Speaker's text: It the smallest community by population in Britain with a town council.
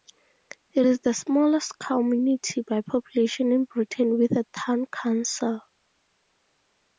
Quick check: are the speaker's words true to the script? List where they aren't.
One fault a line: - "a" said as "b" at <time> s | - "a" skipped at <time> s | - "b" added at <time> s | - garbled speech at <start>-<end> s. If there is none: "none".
- "is" added at 0.9 s